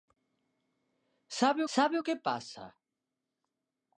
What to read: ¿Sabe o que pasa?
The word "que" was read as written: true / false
true